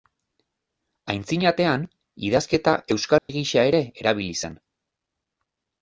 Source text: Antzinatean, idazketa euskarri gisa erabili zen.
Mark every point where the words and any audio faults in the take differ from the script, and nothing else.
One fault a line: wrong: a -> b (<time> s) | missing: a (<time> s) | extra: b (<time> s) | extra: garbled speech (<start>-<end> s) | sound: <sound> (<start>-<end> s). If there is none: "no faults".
sound: dropout (3.2-3.3 s)
extra: ere (3.7 s)